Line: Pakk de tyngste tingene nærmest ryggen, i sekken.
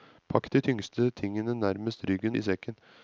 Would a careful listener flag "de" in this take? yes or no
no